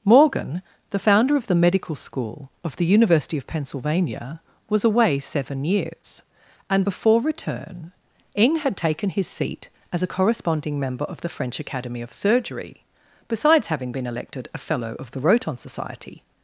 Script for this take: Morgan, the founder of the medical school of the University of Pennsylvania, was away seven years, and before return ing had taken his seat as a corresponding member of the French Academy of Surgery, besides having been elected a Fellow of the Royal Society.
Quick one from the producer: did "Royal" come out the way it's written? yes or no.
no